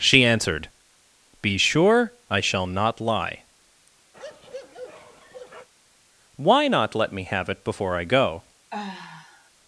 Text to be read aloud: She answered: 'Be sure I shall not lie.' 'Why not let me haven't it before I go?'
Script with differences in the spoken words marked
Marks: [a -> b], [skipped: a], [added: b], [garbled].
She answered: 'Be sure I shall not lie.' 'Why not let me [haven't -> have] it before I go?'